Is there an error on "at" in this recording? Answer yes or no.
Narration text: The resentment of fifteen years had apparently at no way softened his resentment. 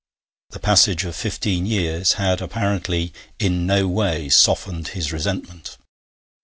yes